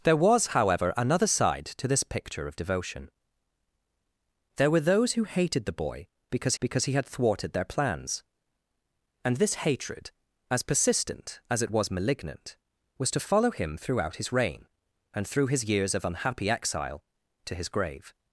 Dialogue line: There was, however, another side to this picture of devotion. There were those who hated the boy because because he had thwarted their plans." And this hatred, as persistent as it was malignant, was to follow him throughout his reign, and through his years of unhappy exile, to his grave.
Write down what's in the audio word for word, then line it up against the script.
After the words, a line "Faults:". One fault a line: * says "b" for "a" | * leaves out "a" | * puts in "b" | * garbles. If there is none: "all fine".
There was, however, another side to this picture of devotion. There were those who hated the boy because because he had thwarted their plans." And this hatred, as persistent as it was malignant, was to follow him throughout his reign, and through his years of unhappy exile, to his grave.
Faults:
all fine